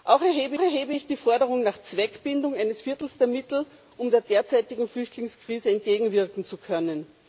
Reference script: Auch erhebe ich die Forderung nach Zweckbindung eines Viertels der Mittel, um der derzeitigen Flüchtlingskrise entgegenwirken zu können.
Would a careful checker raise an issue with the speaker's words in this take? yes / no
yes